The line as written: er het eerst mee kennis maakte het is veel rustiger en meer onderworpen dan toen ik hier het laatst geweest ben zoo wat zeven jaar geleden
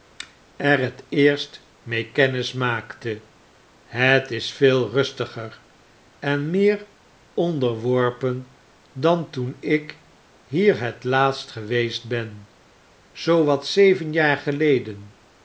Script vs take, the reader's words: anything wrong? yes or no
no